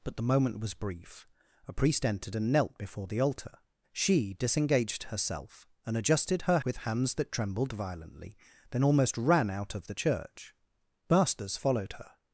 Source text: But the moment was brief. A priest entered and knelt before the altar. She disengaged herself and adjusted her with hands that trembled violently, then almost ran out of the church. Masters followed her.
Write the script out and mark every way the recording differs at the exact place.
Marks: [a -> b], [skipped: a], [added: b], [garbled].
But the moment was brief. A priest entered and knelt before the altar. She disengaged herself and adjusted her with hands that trembled violently, then almost ran out of the church. Masters followed her.